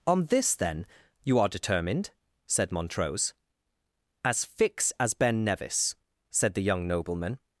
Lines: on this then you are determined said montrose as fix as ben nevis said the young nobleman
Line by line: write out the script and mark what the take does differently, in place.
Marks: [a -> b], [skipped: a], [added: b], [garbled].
on this then you are determined said montrose as fix as ben nevis said the young nobleman